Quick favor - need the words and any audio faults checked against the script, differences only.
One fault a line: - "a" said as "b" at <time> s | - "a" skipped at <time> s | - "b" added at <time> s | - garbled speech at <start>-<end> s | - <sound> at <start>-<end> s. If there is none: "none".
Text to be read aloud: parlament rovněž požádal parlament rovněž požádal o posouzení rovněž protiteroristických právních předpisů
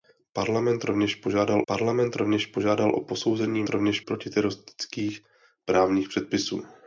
none